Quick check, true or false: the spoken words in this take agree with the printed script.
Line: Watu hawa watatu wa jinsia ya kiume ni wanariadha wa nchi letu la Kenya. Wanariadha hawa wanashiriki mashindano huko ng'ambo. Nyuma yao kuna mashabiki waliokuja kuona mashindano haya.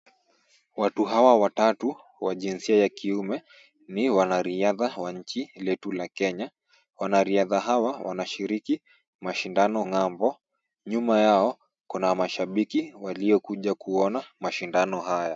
false